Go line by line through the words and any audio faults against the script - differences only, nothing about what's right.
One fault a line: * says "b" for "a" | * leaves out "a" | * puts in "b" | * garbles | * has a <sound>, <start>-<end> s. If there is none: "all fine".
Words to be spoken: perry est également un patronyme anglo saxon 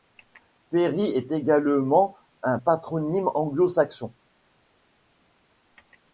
all fine